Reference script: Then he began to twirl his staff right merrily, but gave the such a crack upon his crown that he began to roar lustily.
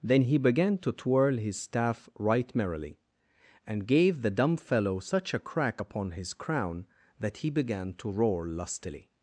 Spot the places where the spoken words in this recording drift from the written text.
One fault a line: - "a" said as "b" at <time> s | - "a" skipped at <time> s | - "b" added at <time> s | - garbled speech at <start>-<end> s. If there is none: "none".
- "but" said as "and" at 3.7 s
- "dumb fellow" added at 4.3 s